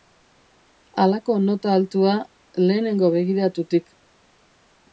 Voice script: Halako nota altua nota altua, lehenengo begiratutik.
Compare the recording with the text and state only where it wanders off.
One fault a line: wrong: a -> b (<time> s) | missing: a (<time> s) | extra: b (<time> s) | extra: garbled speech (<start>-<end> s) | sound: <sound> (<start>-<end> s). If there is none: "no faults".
missing: nota altua (2.1 s)